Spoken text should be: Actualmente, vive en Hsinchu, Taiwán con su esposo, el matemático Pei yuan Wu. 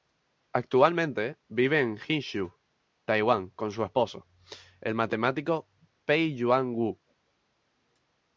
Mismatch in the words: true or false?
false